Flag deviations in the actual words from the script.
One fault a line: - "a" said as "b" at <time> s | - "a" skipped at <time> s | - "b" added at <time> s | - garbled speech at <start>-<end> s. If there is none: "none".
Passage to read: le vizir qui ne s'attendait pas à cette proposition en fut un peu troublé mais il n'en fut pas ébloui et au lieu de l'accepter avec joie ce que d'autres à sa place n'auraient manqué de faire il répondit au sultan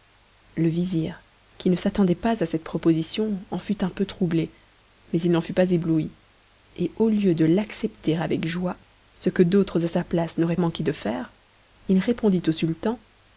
none